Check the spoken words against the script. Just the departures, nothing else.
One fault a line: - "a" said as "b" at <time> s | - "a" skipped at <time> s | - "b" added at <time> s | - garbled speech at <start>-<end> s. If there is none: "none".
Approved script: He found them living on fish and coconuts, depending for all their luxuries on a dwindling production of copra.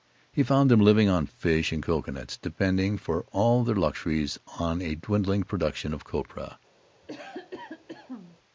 none